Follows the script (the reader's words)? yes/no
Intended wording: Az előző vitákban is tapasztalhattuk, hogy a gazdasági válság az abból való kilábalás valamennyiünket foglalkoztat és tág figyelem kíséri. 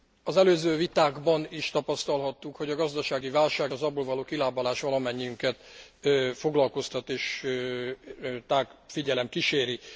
yes